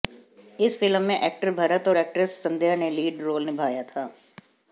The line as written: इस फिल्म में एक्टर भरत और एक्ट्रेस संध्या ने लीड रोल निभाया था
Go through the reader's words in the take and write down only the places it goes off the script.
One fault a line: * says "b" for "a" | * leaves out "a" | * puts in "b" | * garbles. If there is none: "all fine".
all fine